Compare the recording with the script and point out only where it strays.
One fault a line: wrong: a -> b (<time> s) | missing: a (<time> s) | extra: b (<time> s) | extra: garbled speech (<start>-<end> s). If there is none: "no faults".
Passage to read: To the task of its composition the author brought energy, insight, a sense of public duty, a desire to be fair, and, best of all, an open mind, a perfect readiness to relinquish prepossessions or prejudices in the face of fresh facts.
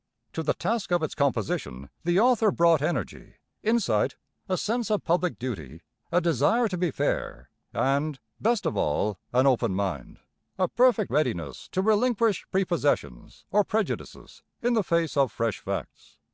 no faults